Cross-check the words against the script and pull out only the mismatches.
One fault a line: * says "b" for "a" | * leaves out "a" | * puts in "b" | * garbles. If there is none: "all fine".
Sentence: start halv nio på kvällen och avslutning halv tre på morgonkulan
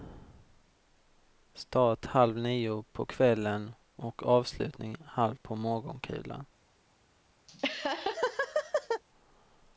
* leaves out "tre"